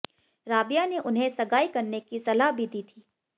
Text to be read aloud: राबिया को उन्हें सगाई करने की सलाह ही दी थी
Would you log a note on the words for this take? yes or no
yes